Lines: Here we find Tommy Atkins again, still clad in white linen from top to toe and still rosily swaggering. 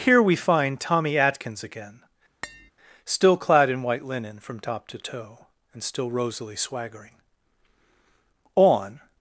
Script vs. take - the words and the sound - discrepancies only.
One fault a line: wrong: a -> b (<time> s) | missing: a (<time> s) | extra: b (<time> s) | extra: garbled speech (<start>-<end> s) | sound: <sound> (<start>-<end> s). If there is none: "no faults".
sound: tap (2.4-2.7 s)
extra: On (8.5 s)